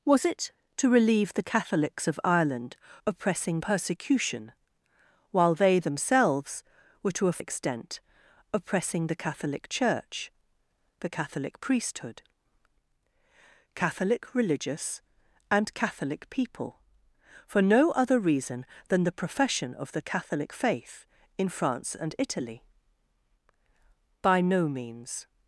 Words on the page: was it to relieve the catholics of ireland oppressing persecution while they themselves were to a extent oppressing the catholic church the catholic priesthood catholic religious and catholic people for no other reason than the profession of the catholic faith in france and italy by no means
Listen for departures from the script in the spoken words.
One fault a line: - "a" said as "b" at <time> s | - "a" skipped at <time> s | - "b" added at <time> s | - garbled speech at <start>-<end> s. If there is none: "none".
none